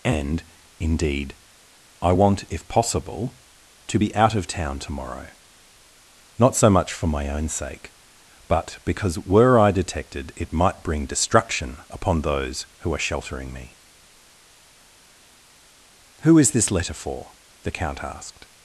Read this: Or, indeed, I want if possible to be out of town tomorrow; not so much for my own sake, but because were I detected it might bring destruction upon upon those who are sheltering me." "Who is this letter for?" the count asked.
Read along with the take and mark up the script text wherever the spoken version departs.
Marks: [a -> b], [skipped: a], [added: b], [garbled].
[Or, -> And] indeed, I want if possible to be out of town tomorrow; not so much for my own sake, but because were I detected it might bring destruction upon [skipped: upon] those who are sheltering me." "Who is this letter for?" the count asked.